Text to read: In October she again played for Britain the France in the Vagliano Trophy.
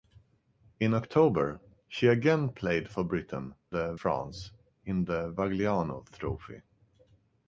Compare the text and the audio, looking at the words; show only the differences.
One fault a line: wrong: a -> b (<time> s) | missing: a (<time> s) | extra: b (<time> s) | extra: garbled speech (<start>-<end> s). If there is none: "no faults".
no faults